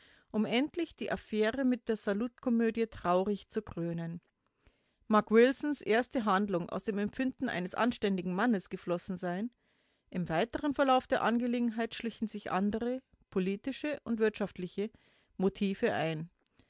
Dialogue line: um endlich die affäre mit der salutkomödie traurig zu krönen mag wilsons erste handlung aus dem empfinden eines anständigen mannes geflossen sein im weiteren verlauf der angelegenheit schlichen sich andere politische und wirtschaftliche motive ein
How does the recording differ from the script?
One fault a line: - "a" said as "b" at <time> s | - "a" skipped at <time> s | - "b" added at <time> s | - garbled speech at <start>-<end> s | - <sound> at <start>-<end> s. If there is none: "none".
none